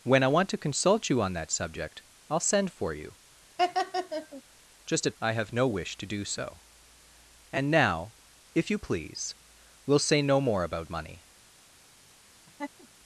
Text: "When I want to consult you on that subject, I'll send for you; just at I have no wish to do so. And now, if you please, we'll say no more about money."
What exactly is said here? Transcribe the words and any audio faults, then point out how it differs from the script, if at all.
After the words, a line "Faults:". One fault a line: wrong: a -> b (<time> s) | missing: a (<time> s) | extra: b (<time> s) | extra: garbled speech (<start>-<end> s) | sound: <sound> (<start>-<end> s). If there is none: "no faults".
"When I want to consult you on that subject, I'll send for you; just at I have no wish to do so. And now, if you please, we'll say no more about money."
Faults:
sound: laugh (3.6-4.4 s)
sound: laugh (12.5-12.9 s)